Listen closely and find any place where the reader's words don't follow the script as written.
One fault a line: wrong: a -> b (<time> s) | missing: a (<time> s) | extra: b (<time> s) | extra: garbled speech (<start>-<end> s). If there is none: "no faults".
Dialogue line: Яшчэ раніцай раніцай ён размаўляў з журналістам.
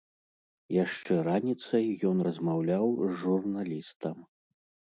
missing: раніцай (1.9 s)